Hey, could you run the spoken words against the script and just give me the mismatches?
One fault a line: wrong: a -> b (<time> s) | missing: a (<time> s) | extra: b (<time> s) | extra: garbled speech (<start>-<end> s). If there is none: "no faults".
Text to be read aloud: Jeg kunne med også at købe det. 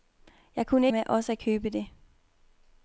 no faults